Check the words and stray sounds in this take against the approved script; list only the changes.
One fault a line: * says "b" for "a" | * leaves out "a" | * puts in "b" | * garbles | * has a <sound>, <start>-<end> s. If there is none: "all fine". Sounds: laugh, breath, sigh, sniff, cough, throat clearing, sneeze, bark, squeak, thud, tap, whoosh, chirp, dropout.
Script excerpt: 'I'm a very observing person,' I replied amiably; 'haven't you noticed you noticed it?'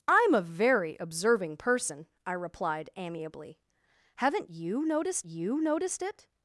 all fine